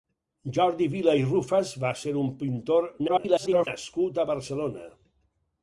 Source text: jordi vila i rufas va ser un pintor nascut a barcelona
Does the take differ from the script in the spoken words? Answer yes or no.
yes